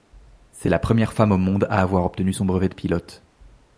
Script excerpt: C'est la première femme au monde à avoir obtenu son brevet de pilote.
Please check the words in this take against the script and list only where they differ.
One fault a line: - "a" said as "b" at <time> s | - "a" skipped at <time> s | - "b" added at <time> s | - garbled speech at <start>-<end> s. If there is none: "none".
none